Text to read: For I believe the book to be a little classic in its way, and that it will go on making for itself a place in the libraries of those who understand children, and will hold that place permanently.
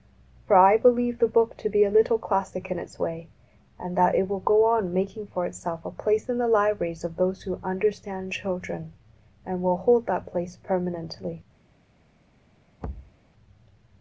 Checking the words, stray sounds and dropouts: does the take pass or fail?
fail